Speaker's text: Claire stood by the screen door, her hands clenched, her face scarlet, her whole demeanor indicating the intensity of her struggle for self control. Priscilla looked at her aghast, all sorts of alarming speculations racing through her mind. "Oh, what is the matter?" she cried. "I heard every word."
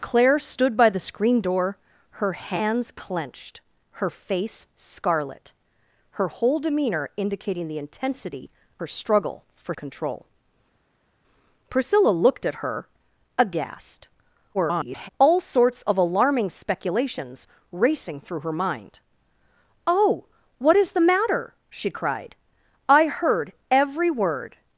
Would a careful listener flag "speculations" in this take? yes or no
no